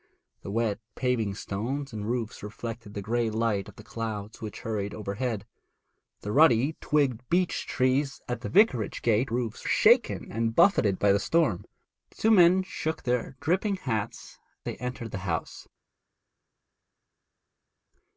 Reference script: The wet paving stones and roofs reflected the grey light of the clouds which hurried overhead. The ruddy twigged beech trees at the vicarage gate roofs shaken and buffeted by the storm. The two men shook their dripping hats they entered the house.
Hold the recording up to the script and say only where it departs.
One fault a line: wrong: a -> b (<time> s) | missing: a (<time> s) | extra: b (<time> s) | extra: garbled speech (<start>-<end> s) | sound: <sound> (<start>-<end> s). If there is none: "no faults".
no faults